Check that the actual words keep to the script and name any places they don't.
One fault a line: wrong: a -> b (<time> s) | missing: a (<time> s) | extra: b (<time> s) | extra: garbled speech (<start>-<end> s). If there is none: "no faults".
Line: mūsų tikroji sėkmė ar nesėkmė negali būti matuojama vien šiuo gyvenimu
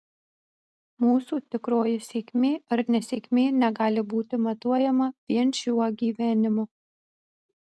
no faults